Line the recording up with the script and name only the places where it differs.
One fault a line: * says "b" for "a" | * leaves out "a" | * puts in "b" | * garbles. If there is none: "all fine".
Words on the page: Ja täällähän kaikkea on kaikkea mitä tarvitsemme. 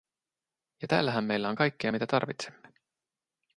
* says "meillä" for "kaikkea"